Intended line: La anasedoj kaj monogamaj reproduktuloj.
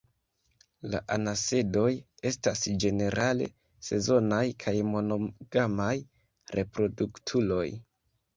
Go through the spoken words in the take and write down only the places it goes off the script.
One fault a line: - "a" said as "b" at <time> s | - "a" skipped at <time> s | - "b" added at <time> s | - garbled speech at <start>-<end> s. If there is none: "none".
- "estas ĝenerale sezonaj" added at 2.3 s